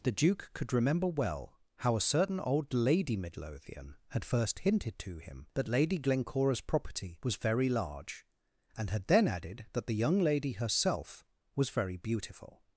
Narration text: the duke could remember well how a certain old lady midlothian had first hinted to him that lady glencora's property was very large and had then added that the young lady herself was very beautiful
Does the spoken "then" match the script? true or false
true